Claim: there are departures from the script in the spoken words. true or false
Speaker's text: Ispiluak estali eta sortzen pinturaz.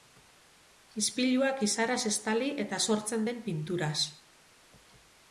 true